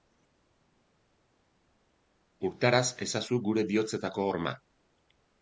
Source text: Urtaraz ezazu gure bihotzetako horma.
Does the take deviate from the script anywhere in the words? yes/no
no